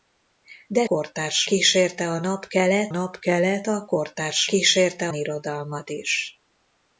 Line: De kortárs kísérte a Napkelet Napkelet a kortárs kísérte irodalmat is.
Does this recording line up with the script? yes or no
yes